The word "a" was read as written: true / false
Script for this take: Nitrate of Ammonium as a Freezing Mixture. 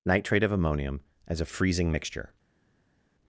true